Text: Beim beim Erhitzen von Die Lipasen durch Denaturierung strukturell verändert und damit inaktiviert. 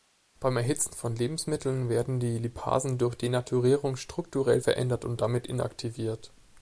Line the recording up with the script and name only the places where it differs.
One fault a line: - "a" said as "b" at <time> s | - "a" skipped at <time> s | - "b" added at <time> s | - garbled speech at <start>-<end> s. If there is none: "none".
- "beim" skipped at 0.6 s
- "Lebensmitteln werden" added at 1.1 s